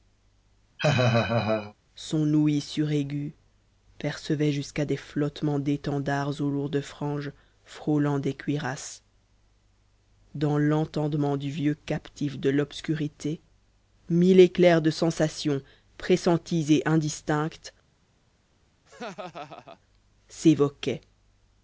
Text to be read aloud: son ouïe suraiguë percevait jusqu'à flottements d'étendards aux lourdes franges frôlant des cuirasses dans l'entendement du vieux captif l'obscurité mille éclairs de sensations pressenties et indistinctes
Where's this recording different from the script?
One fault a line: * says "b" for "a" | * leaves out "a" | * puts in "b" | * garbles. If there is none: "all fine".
* puts in "des"
* puts in "de"